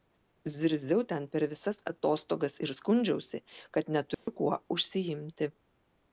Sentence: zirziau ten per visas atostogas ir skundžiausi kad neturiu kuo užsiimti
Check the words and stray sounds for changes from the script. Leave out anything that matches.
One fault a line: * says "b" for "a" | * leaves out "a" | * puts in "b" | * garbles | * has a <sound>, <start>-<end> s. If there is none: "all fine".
* has a dropout, 4.1-4.3 s